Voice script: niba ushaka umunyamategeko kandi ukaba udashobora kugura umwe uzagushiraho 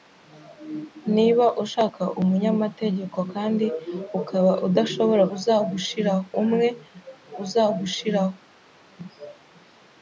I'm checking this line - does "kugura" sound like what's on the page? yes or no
no